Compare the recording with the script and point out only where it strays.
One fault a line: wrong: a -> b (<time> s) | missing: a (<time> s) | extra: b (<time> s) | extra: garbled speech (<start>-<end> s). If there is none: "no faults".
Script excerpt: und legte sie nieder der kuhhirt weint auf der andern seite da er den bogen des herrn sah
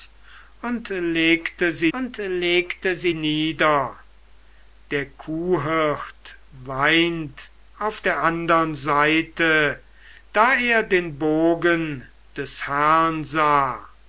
extra: und legte sie (1.9 s)